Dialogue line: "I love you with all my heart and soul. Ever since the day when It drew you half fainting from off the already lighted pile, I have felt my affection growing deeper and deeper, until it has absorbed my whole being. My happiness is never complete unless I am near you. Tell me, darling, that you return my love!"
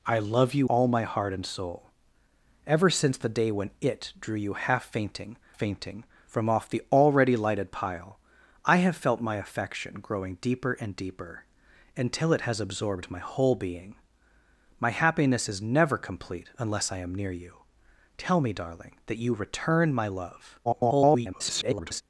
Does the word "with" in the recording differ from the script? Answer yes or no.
yes